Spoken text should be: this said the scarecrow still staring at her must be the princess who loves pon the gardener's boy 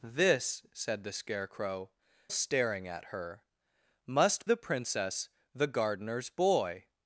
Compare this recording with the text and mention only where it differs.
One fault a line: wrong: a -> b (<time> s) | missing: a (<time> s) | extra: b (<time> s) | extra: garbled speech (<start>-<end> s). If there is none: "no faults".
missing: still (1.9 s)
missing: be (4.5 s)
missing: who loves pon (5.3 s)